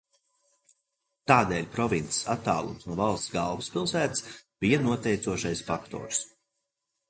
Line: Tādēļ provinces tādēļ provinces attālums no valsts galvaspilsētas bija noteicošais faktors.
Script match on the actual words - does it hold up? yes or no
no